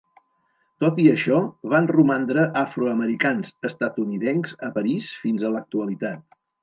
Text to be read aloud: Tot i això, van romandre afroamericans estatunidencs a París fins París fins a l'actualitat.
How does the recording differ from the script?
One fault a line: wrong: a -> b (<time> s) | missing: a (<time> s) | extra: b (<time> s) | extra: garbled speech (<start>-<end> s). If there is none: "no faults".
missing: París fins (5.5 s)